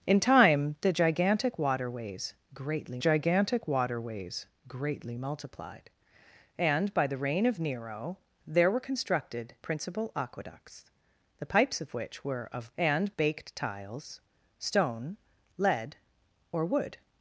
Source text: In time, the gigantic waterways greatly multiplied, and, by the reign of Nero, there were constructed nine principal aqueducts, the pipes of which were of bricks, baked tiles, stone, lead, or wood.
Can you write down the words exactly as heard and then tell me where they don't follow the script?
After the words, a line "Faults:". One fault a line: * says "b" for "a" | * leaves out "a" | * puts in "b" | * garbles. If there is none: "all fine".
In time, the gigantic waterways greatly gigantic waterways greatly multiplied, and, by the reign of Nero, there were constructed principal aqueducts, the pipes of which were of and, baked tiles, stone, lead, or wood.
Faults:
* puts in "gigantic waterways greatly"
* leaves out "nine"
* says "and" for "bricks"